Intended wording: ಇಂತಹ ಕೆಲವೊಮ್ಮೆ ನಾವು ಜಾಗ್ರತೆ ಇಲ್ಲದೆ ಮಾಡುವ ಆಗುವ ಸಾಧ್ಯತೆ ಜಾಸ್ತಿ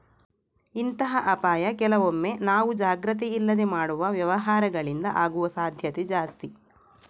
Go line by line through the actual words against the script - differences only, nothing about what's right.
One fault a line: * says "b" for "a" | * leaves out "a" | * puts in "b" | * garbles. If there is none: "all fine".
* puts in "ಅಪಾಯ"
* puts in "ವ್ಯವಹಾರಗಳಿಂದ"